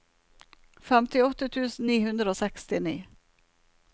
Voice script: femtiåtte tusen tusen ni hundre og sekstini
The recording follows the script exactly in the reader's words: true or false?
false